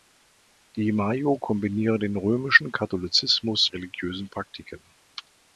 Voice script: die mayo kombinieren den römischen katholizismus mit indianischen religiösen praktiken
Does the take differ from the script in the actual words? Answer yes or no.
yes